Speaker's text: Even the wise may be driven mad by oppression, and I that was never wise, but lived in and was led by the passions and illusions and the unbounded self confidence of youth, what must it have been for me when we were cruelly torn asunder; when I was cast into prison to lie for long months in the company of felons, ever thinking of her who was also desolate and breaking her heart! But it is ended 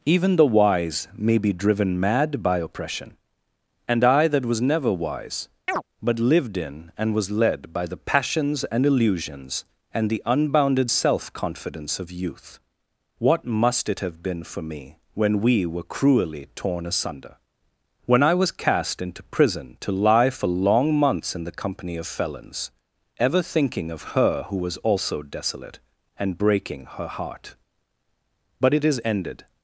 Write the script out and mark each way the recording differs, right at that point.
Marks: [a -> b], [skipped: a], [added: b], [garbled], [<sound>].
Even the wise may be driven mad by oppression, and I that was never wise, [chirp] but lived in and was led by the passions and illusions and the unbounded self confidence of youth, what must it have been for me when we were cruelly torn asunder; when I was cast into prison to lie for long months in the company of felons, ever thinking of her who was also desolate and breaking her heart! But it is ended